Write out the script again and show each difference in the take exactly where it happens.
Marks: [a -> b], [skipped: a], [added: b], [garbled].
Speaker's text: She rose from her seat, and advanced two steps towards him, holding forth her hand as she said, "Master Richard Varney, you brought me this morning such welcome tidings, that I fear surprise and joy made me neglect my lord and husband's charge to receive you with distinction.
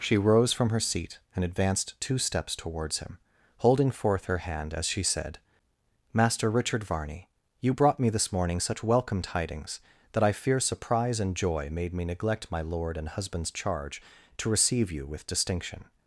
She rose from her seat, and advanced two steps towards him, holding forth her hand as she said, "Master Richard Varney, you brought me this morning such welcome tidings, that I fear surprise and joy made me neglect my lord and husband's charge to receive you with distinction.